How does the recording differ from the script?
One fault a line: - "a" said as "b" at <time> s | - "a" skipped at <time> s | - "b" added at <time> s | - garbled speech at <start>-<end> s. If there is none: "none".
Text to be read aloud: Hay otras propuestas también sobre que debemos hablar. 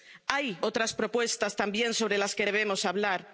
- "las" added at 2.2 s